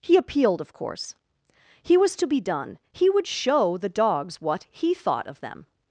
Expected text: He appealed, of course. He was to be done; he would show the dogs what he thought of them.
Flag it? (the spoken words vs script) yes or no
no